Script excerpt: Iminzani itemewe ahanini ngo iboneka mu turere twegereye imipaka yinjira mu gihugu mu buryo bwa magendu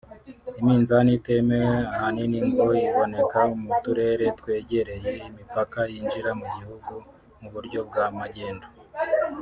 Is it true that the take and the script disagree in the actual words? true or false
false